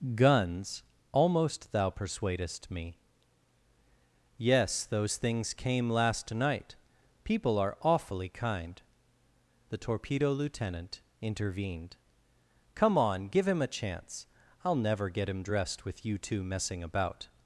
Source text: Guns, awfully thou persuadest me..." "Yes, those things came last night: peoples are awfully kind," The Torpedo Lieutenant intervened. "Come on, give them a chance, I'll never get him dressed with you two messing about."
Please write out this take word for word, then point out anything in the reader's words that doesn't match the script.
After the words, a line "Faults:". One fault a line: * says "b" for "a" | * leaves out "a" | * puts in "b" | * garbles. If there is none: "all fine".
Guns, almost thou persuadest me..." "Yes, those things came last night: people are awfully kind," The Torpedo Lieutenant intervened. "Come on, give him a chance, I'll never get him dressed with you two messing about."
Faults:
* says "almost" for "awfully"
* says "people" for "peoples"
* says "him" for "them"